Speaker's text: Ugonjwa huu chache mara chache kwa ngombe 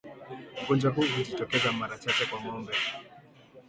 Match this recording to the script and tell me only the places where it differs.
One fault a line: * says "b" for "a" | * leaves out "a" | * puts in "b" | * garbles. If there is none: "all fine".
* says "hujitokeza" for "chache"